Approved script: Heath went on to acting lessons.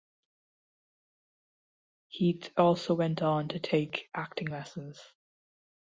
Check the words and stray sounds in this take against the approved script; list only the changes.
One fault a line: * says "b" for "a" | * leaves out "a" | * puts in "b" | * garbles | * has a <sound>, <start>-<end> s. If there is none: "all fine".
* puts in "also"
* puts in "take"